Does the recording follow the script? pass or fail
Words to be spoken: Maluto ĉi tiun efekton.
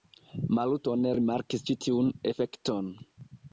fail